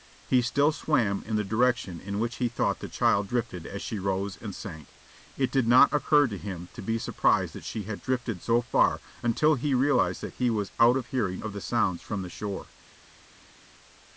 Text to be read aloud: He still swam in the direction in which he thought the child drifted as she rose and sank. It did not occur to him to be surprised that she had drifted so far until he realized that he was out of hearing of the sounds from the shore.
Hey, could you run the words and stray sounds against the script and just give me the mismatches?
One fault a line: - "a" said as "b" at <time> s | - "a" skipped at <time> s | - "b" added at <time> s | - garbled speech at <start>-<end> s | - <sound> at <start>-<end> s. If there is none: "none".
none